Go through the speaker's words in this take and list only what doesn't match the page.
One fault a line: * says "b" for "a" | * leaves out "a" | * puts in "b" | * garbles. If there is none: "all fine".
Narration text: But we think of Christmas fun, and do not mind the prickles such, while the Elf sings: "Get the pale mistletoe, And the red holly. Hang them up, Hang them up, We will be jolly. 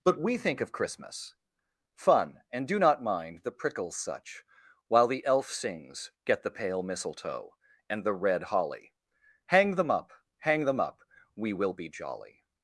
all fine